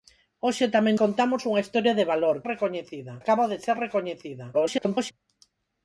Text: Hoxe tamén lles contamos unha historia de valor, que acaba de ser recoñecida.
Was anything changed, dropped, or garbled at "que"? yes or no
yes